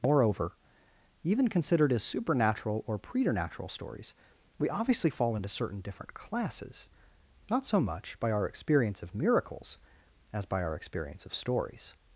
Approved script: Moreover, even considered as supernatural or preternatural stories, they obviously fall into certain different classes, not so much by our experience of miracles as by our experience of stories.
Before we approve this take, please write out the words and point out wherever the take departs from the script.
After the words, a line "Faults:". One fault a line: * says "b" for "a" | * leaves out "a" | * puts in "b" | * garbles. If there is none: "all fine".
Moreover, even considered as supernatural or preternatural stories, we obviously fall into certain different classes, not so much by our experience of miracles as by our experience of stories.
Faults:
* says "we" for "they"